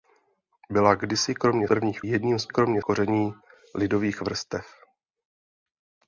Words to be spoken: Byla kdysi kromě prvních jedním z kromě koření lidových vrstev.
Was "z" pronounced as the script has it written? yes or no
yes